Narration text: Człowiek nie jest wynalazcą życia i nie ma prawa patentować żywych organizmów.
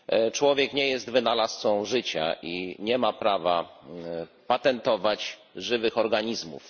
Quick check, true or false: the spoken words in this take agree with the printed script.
true